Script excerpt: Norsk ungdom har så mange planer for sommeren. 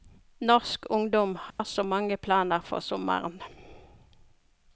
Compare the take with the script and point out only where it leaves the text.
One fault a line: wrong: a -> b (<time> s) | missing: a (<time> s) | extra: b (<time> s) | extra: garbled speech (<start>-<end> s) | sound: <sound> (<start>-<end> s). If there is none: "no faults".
sound: dropout (1.5-1.6 s)